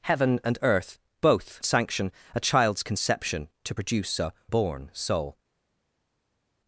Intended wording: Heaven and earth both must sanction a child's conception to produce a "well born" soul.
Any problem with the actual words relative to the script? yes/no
yes